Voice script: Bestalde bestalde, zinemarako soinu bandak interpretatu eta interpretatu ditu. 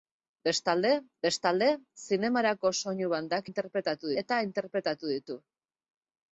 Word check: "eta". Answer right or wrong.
right